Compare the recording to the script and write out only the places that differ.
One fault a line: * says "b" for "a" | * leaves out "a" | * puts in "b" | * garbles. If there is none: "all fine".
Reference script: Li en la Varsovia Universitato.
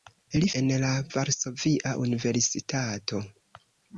all fine